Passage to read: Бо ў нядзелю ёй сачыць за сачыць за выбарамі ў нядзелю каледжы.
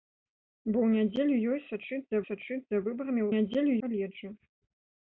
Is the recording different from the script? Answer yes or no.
no